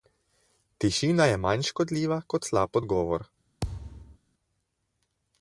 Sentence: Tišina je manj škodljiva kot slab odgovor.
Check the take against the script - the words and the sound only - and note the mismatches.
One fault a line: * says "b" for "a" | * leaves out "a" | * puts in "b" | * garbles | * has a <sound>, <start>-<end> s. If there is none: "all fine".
* has a thud, 3.6-4.2 s